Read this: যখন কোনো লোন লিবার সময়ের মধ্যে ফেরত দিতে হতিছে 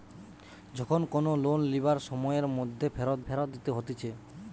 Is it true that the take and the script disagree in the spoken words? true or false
true